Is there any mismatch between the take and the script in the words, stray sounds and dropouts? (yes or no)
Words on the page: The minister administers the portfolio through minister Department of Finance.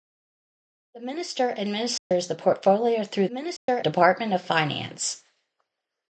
yes